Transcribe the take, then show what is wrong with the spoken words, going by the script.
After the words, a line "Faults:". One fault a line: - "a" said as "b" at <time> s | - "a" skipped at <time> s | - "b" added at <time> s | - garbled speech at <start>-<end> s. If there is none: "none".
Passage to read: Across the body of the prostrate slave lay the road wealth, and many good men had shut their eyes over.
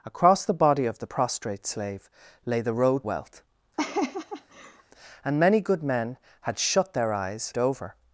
Across the body of the prostrate slave lay the road wealth, and many good men had shut their eyes over.
Faults:
none